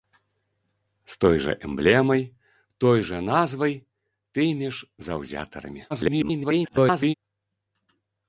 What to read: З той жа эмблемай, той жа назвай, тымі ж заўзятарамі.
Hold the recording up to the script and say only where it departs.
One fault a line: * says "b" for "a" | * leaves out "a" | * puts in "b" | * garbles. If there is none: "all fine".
* garbles